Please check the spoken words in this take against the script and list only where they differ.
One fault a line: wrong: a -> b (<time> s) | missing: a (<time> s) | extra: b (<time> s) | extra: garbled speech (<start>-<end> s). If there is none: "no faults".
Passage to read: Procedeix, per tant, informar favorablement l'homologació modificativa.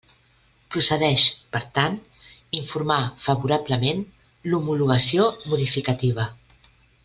no faults